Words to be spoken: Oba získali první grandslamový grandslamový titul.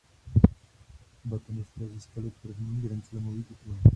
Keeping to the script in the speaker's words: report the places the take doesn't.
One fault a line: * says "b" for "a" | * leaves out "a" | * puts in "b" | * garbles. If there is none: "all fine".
* puts in "tenisté"
* leaves out "grandslamový"